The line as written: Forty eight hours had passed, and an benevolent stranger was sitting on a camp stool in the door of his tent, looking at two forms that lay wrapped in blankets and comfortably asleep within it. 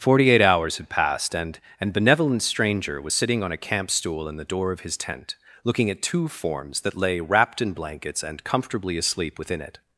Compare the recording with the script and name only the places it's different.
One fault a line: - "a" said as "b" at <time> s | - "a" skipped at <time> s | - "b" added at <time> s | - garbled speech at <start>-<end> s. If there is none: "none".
none